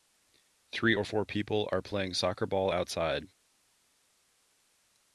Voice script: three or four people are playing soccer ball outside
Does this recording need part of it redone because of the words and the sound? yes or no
no